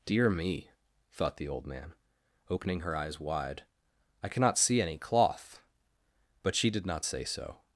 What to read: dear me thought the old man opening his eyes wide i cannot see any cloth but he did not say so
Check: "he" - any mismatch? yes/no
yes